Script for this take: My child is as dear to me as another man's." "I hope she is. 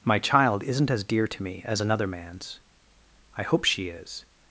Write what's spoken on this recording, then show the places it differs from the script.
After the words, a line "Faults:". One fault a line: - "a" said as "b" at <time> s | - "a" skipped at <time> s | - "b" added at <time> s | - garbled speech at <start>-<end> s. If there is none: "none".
My child isn't as dear to me as another man's." "I hope she is.
Faults:
- "is" said as "isn't" at 0.6 s